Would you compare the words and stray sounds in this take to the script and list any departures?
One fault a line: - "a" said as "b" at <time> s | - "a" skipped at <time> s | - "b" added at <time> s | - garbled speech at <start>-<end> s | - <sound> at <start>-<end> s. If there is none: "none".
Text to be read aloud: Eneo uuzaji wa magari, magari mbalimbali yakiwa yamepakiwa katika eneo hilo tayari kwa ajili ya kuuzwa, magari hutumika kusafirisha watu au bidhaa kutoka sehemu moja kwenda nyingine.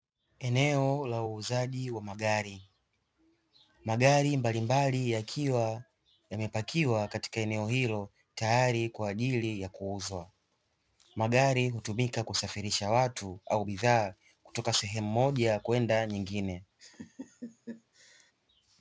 - "la" added at 1.1 s
- laugh at 16.8-18.3 s